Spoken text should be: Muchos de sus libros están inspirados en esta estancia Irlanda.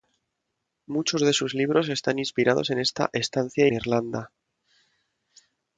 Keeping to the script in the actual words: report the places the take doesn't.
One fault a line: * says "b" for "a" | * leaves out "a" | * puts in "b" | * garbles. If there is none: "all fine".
all fine